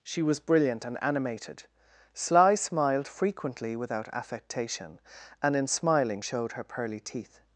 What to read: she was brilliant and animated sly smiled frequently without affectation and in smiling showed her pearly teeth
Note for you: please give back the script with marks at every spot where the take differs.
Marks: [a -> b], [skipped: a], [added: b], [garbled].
she was brilliant and animated sly smiled frequently without affectation and in smiling showed her pearly teeth